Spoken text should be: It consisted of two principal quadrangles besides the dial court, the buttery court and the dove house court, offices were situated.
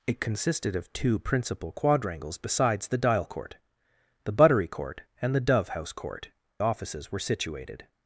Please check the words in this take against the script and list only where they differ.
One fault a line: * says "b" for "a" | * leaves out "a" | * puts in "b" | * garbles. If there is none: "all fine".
all fine